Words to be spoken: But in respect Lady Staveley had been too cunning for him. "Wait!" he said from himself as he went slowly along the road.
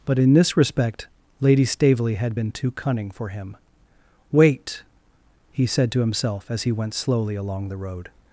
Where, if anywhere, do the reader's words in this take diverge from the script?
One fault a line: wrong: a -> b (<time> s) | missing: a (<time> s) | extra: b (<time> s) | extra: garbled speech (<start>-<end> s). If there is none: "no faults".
extra: this (0.3 s)
wrong: from -> to (5.9 s)